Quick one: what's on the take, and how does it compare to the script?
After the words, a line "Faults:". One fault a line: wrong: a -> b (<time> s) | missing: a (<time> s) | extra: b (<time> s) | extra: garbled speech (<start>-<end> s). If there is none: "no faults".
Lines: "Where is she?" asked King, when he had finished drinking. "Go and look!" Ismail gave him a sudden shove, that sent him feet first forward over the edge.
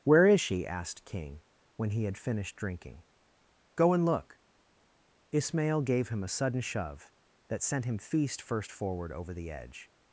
"Where is she?" asked King, when he had finished drinking. "Go and look!" Ismail gave him a sudden shove, that sent him feast first forward over the edge.
Faults:
wrong: feet -> feast (8.0 s)